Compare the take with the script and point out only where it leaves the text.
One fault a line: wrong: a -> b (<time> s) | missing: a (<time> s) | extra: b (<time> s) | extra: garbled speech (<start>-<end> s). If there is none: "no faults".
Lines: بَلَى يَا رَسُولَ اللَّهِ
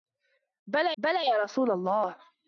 extra: بَلَى (1.0 s)